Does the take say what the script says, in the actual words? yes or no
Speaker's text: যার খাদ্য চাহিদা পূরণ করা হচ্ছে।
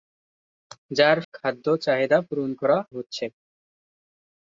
yes